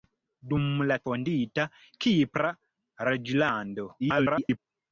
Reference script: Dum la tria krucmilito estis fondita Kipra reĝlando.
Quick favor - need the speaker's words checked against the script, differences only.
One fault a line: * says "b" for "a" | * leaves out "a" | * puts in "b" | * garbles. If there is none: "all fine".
* leaves out "tria krucmilito estis"
* garbles